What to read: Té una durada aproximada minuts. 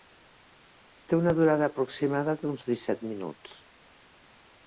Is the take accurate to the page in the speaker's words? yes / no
no